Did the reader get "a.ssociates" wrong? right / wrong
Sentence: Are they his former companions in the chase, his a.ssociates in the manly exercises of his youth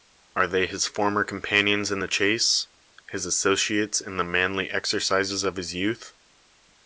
right